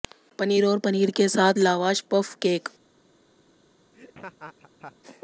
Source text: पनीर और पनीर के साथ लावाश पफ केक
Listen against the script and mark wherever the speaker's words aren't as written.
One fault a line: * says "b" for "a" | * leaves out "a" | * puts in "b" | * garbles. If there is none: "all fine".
all fine